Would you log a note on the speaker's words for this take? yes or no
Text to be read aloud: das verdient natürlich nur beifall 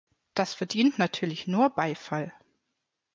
no